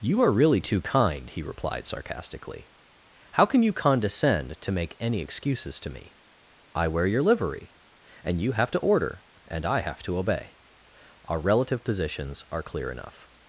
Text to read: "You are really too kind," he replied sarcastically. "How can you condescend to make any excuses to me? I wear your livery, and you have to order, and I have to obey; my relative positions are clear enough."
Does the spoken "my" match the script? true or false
false